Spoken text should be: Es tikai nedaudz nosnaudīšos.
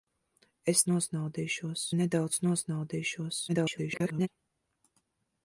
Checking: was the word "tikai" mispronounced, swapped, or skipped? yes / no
yes